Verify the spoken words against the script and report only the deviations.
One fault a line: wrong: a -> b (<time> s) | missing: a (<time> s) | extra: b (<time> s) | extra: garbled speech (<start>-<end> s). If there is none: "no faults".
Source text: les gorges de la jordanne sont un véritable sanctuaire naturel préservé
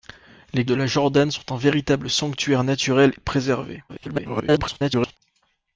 missing: gorges (0.7 s)
extra: garbled speech (3.9-5.2 s)